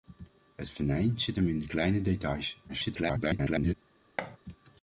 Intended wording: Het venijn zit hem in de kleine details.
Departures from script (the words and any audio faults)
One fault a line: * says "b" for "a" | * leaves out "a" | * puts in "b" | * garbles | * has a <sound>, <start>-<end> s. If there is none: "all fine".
* garbles
* has a thud, 4.2-4.4 s